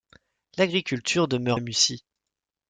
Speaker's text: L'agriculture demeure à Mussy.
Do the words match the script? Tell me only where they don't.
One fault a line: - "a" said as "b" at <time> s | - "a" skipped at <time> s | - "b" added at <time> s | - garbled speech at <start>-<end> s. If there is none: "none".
none